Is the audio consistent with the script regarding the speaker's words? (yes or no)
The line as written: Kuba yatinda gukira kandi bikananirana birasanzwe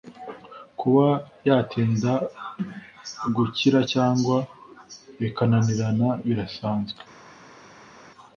no